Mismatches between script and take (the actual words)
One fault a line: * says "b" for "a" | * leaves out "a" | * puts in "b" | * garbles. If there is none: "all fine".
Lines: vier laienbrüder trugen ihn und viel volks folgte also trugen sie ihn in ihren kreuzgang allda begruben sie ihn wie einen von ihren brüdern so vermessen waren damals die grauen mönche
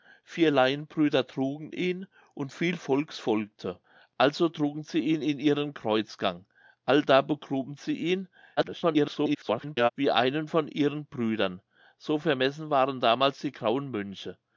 * garbles